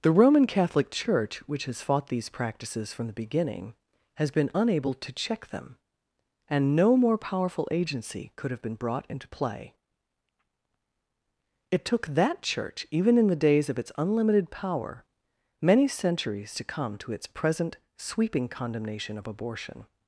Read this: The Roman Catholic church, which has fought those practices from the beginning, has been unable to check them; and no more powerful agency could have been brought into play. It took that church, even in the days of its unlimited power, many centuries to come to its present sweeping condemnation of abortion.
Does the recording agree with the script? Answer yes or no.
no